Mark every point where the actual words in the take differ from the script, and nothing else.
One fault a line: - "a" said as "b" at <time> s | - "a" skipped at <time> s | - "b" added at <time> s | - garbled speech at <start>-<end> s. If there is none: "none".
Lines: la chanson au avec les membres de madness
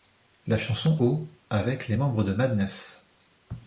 none